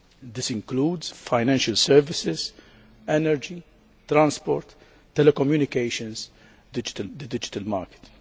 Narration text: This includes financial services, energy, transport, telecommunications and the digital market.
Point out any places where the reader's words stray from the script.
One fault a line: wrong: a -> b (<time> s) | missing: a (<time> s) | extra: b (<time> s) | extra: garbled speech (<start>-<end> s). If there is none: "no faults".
wrong: and -> digital (6.7 s)